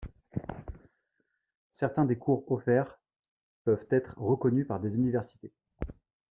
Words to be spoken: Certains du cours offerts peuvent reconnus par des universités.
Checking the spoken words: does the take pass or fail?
fail